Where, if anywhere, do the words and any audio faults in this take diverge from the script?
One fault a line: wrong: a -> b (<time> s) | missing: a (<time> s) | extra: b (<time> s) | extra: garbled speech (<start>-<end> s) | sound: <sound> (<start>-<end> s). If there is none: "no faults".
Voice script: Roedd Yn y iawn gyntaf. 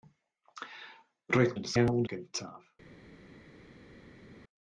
no faults